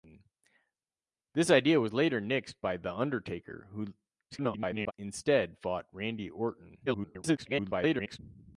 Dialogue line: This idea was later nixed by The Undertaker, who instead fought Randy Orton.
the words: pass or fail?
fail